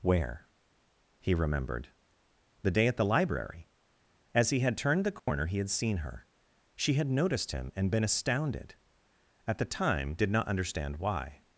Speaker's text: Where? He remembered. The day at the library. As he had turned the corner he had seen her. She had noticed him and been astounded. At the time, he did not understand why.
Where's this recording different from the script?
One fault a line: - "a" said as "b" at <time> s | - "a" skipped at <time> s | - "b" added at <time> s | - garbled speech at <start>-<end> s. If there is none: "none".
- "he" skipped at 10.1 s